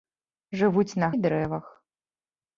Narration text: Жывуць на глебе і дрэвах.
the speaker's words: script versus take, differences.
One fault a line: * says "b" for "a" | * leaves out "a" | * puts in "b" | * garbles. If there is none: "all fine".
* leaves out "глебе"